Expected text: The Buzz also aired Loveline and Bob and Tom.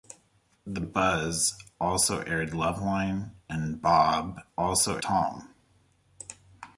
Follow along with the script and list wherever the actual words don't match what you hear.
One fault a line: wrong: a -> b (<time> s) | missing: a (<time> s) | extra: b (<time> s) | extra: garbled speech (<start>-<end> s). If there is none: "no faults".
wrong: and -> also (4.6 s)